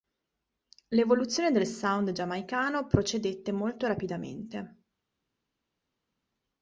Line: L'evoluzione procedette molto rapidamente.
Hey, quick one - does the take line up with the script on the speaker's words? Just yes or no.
no